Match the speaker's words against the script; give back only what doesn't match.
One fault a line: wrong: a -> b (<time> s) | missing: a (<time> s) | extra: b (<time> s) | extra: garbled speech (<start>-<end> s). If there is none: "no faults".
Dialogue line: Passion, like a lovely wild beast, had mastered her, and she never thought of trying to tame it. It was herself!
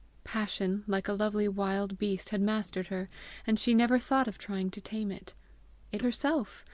missing: was (6.0 s)